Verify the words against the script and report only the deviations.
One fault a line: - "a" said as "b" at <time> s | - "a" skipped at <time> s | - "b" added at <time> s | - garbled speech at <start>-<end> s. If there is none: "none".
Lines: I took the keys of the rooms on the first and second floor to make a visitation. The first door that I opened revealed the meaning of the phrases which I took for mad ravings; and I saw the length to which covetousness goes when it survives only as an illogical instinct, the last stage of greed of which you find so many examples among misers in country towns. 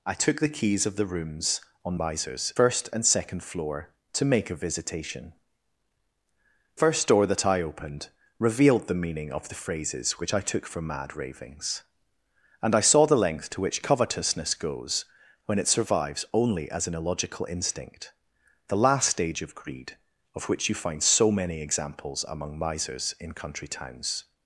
- "the" said as "misers" at 2.0 s
- "The" skipped at 5.3 s